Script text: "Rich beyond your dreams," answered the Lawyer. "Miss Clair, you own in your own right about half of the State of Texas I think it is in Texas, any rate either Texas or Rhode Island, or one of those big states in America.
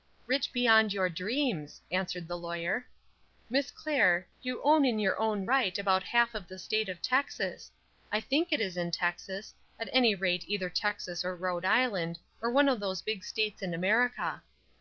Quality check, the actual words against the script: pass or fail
fail